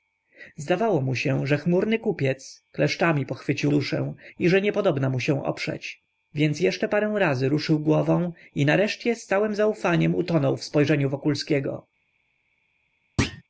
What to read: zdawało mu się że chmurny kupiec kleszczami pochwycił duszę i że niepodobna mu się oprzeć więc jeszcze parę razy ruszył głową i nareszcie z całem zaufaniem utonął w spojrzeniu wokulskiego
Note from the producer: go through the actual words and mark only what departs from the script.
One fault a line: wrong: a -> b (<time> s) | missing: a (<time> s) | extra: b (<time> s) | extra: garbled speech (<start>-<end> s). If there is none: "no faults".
no faults